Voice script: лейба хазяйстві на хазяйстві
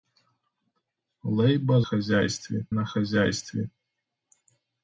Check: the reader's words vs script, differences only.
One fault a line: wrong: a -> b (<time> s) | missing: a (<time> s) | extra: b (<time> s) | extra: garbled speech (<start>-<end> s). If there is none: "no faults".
no faults